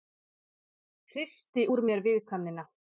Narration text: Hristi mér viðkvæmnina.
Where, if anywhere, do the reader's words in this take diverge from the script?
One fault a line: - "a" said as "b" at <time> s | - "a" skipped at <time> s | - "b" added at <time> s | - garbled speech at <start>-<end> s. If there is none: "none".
- "úr" added at 1.7 s